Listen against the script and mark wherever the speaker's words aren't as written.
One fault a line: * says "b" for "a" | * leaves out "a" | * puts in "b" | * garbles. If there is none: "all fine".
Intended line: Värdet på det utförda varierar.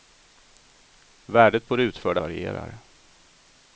all fine